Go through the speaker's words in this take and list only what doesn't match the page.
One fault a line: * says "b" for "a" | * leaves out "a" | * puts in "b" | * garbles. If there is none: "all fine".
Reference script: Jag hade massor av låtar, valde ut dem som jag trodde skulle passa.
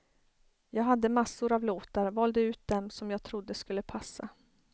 all fine